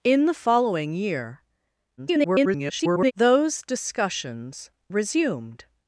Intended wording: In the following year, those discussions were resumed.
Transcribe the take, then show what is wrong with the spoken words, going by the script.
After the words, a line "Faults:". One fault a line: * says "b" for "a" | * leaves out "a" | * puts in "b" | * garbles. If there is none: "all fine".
In the following year, [garbled] those discussions resumed.
Faults:
* garbles
* leaves out "were"